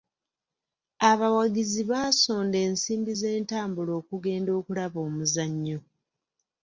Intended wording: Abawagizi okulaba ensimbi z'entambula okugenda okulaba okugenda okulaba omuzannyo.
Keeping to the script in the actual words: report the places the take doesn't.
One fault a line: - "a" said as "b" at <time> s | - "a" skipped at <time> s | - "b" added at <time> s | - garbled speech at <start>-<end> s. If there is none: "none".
- "okulaba" said as "baasonda" at 1.9 s
- "okugenda okulaba" skipped at 5.0 s